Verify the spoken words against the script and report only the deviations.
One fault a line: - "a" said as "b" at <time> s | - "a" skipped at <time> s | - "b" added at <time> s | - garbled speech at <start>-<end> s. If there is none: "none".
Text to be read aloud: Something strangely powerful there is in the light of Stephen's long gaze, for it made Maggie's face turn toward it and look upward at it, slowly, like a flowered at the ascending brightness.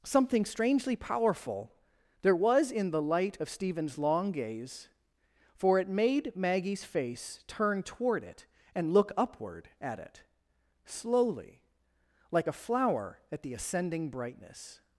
- "is" said as "was" at 2.3 s
- "flowered" said as "flower" at 12.5 s